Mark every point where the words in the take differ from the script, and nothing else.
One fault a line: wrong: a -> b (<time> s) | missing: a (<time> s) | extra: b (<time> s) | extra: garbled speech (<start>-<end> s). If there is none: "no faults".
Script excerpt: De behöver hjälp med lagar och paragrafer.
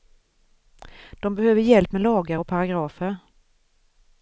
no faults